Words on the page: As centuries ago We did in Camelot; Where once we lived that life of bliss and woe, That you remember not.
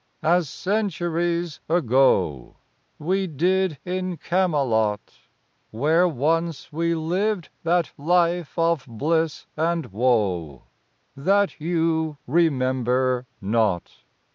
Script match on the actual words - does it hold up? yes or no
yes